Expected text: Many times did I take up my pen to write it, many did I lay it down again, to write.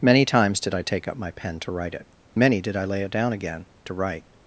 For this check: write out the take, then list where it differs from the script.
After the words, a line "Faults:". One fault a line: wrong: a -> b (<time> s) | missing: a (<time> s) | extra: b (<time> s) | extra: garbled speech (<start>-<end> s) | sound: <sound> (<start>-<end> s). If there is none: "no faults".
Many times did I take up my pen to write it, many did I lay it down again, to write.
Faults:
no faults